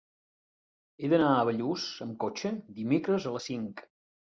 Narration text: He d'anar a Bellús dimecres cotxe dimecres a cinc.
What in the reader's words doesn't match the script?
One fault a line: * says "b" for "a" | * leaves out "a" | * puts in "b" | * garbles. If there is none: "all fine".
* says "amb" for "dimecres"
* puts in "les"